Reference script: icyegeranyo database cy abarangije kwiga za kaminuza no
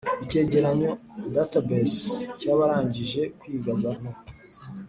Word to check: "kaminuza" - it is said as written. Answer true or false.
false